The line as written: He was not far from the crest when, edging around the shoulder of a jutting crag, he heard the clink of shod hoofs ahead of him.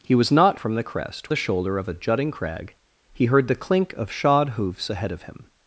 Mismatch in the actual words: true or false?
true